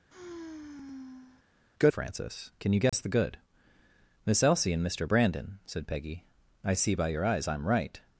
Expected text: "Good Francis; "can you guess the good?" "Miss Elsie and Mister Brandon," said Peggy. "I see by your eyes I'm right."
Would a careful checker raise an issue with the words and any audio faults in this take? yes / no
yes